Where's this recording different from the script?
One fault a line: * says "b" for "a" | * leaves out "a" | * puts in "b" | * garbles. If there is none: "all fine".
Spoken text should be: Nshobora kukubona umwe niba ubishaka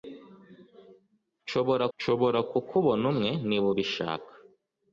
* puts in "nshobora"